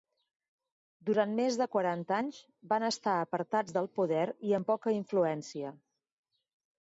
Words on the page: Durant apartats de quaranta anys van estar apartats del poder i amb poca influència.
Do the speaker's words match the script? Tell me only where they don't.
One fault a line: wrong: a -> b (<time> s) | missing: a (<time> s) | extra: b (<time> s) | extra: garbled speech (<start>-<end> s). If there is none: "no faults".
wrong: apartats -> més (1.4 s)